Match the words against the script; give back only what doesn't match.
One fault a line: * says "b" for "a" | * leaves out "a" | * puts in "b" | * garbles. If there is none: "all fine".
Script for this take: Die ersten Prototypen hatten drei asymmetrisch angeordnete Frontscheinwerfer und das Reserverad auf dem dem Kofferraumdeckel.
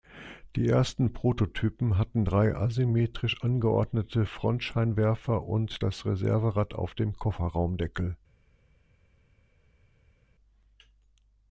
* leaves out "dem"